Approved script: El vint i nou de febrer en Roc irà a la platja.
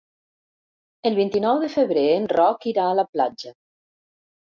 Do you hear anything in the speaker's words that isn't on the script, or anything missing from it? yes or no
no